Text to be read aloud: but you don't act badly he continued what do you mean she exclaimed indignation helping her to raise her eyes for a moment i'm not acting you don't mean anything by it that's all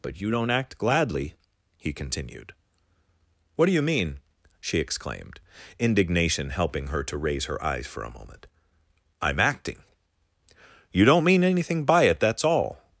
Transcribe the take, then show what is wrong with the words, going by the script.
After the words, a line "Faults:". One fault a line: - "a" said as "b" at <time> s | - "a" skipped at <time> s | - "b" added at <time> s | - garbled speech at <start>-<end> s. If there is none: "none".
but you don't act gladly he continued what do you mean she exclaimed indignation helping her to raise her eyes for a moment i'm acting you don't mean anything by it that's all
Faults:
- "badly" said as "gladly" at 0.8 s
- "not" skipped at 9.4 s